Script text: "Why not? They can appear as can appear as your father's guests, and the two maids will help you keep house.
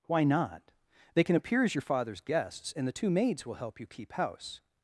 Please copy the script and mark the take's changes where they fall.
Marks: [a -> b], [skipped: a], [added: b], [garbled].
"Why not? They can appear as [skipped: can appear as] your father's guests, and the two maids will help you keep house.